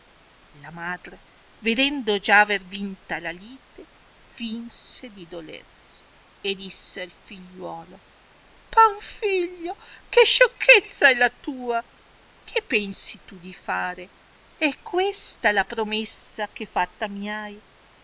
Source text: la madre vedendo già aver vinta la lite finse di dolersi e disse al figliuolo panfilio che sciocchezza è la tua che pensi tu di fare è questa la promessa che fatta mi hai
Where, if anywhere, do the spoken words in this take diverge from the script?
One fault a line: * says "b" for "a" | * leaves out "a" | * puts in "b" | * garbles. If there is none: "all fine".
all fine